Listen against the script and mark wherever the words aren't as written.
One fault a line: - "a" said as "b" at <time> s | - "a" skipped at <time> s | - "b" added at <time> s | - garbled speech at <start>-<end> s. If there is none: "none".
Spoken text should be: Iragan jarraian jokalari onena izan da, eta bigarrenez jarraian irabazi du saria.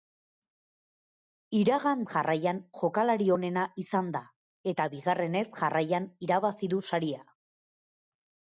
none